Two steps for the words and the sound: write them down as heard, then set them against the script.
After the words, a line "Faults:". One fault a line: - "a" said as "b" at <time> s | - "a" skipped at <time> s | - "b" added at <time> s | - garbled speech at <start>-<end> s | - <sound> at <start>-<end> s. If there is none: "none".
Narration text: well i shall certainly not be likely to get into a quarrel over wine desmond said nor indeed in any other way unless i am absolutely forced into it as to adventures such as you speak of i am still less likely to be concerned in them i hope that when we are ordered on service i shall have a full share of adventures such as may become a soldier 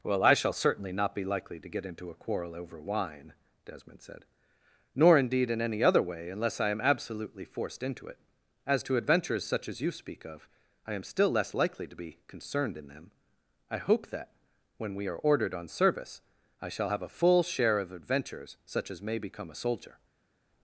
well i shall certainly not be likely to get into a quarrel over wine desmond said nor indeed in any other way unless i am absolutely forced into it as to adventures such as you speak of i am still less likely to be concerned in them i hope that when we are ordered on service i shall have a full share of adventures such as may become a soldier
Faults:
none